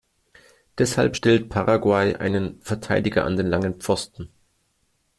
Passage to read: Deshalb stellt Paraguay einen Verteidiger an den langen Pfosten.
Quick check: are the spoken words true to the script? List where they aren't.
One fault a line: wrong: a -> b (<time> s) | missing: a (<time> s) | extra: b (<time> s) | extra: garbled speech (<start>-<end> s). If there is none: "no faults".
no faults